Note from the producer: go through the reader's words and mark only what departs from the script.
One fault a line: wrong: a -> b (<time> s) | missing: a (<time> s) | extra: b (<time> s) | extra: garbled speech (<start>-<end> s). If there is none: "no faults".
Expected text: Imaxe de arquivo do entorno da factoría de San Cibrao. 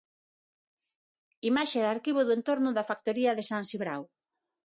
no faults